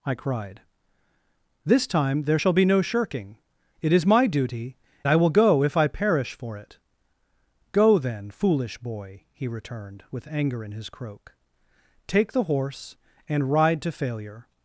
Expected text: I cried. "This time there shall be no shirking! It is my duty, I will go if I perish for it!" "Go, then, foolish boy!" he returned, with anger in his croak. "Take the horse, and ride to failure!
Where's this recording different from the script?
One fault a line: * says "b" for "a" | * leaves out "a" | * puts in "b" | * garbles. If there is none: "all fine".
all fine